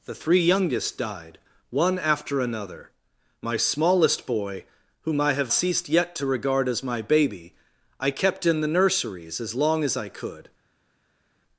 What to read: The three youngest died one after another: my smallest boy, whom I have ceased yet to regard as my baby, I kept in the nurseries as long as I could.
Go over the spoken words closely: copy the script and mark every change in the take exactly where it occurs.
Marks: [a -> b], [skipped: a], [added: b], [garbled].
The three youngest died one after another: my smallest boy, whom I have ceased yet to regard as my baby, I kept in the nurseries as long as I could.